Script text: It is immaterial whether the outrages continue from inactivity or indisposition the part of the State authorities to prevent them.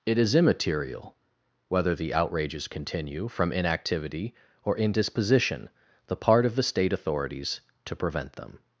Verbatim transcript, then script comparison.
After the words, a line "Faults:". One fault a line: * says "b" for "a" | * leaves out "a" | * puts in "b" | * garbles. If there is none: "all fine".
It is immaterial whether the outrages continue from inactivity or indisposition the part of the State authorities to prevent them.
Faults:
all fine